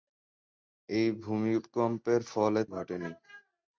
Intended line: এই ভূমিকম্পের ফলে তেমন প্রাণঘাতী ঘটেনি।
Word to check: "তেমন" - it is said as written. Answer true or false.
false